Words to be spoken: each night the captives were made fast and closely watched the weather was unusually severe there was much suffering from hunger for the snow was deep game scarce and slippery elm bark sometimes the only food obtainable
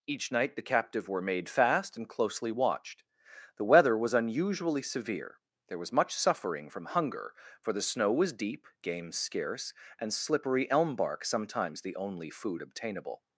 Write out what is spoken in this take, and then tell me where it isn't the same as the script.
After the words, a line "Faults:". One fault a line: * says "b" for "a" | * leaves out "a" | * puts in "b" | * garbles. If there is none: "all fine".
each night the captive were made fast and closely watched the weather was unusually severe there was much suffering from hunger for the snow was deep game scarce and slippery elm bark sometimes the only food obtainable
Faults:
* says "captive" for "captives"